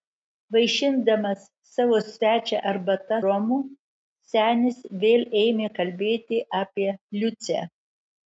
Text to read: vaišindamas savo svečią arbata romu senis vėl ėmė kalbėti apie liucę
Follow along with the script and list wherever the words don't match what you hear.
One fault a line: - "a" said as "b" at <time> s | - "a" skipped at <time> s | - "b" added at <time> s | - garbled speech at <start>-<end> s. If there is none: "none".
none